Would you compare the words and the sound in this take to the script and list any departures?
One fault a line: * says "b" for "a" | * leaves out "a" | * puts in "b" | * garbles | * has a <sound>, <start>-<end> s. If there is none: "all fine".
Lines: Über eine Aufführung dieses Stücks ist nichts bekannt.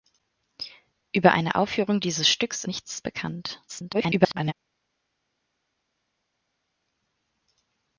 * leaves out "ist"
* garbles